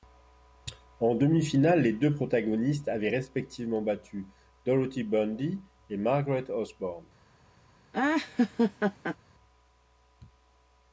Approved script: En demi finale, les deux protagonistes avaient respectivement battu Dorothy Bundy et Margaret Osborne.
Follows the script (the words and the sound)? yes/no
no